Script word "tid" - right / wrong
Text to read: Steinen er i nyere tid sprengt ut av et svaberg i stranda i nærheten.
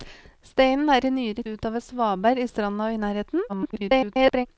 wrong